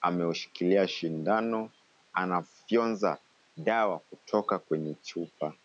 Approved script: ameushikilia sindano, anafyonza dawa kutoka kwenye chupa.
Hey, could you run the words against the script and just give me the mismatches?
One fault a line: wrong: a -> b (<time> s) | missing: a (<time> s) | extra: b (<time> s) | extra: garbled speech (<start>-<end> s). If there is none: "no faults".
no faults